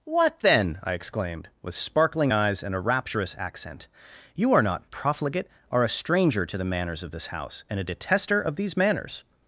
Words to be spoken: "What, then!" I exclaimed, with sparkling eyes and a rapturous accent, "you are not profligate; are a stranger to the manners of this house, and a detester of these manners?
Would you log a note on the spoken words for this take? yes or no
no